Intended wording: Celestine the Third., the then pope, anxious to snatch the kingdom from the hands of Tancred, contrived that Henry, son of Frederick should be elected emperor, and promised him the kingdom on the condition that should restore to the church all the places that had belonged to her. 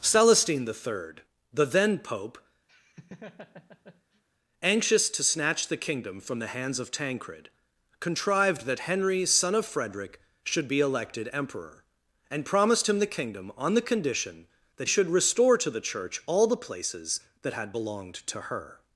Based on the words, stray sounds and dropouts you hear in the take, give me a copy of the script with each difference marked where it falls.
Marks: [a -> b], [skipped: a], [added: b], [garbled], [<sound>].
Celestine the Third., the then pope, [laugh] anxious to snatch the kingdom from the hands of Tancred, contrived that Henry, son of Frederick should be elected emperor, and promised him the kingdom on the condition that should restore to the church all the places that had belonged to her.